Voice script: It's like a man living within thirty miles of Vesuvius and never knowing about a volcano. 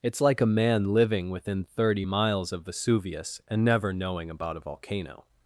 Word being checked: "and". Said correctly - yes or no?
yes